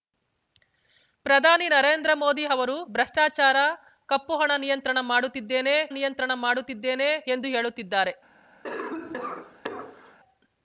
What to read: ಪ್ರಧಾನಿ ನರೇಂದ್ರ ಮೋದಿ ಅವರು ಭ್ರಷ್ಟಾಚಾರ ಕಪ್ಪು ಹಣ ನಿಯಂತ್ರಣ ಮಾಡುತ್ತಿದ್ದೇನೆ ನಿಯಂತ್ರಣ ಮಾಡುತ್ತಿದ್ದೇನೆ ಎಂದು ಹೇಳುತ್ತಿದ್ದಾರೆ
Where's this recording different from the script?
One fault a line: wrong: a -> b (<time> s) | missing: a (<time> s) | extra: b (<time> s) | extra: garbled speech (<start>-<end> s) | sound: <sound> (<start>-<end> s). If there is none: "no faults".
sound: cough (8.6-10.2 s)